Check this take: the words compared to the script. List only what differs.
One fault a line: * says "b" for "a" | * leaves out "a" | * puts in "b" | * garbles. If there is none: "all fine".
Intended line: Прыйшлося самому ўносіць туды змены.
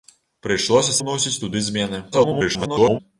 * leaves out "самому"
* garbles